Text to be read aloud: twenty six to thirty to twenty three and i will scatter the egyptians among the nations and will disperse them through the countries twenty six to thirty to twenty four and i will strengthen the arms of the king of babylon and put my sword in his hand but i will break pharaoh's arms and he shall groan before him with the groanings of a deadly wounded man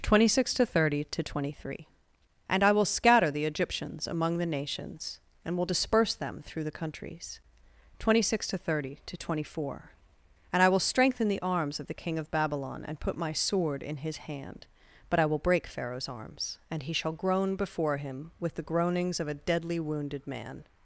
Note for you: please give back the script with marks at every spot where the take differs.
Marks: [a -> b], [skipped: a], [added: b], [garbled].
twenty six to thirty to twenty three and i will scatter the egyptians among the nations and will disperse them through the countries twenty six to thirty to twenty four and i will strengthen the arms of the king of babylon and put my sword in his hand but i will break pharaoh's arms and he shall groan before him with the groanings of a deadly wounded man